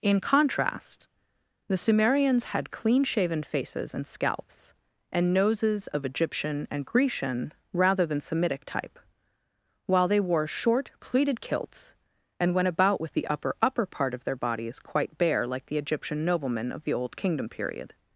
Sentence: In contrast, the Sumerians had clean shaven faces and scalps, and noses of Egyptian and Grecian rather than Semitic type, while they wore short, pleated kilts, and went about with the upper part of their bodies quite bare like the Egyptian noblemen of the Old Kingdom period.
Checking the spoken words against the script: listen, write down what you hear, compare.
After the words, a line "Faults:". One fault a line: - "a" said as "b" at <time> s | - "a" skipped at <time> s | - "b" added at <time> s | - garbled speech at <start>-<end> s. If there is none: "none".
In contrast, the Sumerians had clean shaven faces and scalps, and noses of Egyptian and Grecian rather than Semitic type, while they wore short, pleated kilts, and went about with the upper upper part of their bodies quite bare like the Egyptian noblemen of the Old Kingdom period.
Faults:
- "upper" added at 13.6 s